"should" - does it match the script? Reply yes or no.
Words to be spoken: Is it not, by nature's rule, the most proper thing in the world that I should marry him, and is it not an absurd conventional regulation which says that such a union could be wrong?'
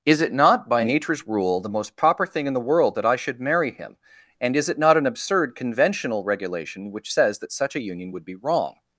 yes